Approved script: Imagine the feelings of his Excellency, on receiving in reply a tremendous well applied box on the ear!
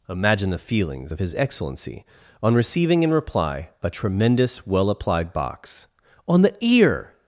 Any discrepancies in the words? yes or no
no